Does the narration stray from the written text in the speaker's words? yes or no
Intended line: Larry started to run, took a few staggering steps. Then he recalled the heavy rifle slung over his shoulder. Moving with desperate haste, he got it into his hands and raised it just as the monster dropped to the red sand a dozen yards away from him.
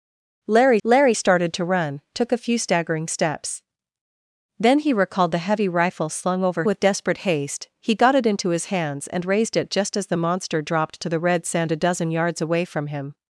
yes